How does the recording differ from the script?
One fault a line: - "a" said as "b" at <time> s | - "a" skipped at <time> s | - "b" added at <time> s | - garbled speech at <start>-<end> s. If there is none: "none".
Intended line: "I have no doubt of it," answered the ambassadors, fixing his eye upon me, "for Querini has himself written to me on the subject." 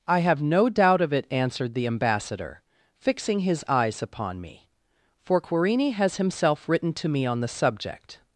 - "ambassadors" said as "ambassador" at 1.9 s
- "eye" said as "eyes" at 3.7 s